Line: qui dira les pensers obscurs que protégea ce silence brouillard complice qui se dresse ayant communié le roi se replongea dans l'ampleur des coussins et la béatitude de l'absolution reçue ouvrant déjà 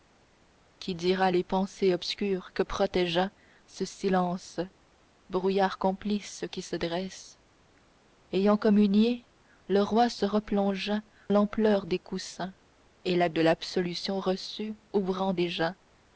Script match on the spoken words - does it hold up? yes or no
no